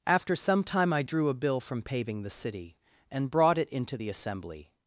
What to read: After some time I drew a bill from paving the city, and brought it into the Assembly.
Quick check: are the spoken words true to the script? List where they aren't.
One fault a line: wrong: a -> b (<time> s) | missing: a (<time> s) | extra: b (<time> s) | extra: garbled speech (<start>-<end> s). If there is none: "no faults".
no faults